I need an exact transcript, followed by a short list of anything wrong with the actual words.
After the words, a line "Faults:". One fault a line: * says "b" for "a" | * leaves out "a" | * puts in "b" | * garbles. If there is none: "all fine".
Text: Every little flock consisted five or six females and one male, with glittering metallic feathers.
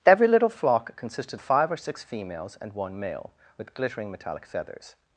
Every little flock consisted five or six females and one male, with glittering metallic feathers.
Faults:
all fine